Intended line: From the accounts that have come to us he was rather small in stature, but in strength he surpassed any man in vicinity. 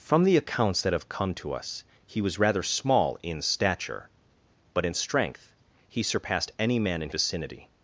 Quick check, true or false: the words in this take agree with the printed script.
true